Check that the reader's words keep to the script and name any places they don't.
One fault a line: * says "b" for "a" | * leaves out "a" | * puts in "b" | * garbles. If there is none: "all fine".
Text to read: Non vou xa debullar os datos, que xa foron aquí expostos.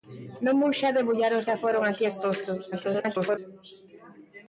* leaves out "datos que"
* garbles